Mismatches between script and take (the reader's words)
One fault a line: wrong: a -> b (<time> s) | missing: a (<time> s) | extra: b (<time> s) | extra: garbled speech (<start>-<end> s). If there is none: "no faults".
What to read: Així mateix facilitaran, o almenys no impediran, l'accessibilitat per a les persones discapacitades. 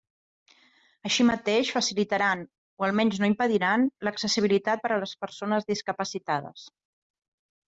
no faults